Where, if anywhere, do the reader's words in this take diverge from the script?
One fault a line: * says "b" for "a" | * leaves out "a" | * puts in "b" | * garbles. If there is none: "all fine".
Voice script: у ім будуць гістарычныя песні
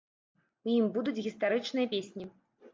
all fine